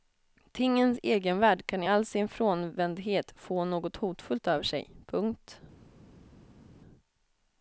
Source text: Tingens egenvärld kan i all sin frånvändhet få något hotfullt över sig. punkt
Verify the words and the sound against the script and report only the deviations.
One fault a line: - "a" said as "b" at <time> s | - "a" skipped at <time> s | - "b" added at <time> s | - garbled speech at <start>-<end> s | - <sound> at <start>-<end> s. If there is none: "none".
none